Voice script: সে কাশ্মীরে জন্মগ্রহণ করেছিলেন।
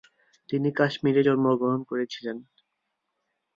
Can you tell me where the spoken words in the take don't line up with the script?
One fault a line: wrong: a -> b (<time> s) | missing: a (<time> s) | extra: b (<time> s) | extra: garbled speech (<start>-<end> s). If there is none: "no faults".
wrong: সে -> তিনি (0.5 s)